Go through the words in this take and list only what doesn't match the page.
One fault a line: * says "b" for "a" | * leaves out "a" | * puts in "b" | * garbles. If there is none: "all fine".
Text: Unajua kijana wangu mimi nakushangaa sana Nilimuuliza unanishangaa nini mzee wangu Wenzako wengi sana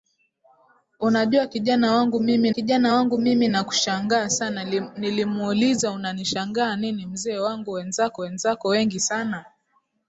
* puts in "kijana wangu mimi"
* puts in "Wenzako"